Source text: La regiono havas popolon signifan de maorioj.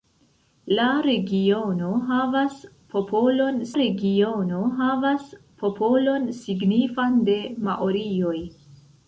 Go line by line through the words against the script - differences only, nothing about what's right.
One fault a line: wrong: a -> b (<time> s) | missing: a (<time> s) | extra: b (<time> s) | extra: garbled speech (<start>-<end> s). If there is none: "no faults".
extra: regiono havas popolon (3.8 s)